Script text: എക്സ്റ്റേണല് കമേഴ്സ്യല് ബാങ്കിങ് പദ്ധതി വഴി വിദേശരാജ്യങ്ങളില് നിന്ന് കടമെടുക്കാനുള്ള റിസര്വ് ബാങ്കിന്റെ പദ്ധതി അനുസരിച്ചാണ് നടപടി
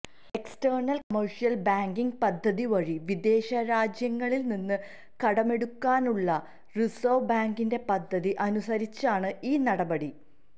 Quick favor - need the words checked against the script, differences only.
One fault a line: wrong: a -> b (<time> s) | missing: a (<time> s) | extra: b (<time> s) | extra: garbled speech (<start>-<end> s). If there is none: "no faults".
extra: ഈ (9.4 s)